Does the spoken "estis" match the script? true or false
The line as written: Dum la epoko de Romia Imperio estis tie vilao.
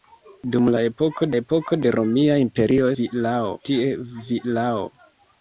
false